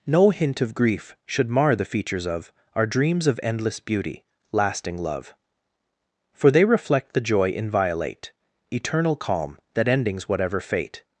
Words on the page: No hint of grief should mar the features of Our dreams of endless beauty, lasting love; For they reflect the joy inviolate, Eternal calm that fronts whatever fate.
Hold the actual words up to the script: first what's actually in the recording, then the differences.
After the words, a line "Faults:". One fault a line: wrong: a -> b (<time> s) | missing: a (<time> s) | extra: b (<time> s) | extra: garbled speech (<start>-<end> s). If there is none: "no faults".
No hint of grief should mar the features of Our dreams of endless beauty, lasting love; For they reflect the joy inviolate, Eternal calm that endings whatever fate.
Faults:
wrong: fronts -> endings (9.9 s)